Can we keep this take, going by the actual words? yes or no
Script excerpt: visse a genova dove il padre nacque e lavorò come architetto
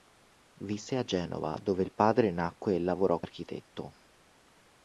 no